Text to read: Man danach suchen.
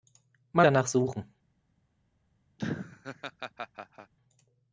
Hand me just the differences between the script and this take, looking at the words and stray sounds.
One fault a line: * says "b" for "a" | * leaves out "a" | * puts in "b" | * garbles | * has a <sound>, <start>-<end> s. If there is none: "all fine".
* has a laugh, 2.6-4.1 s